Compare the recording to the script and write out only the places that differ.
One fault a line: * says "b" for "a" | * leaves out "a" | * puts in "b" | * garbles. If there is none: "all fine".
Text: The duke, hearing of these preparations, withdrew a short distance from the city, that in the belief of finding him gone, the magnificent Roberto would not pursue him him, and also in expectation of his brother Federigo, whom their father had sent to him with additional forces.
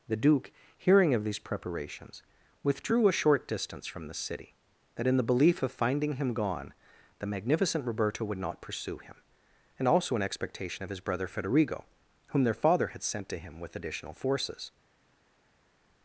* leaves out "him"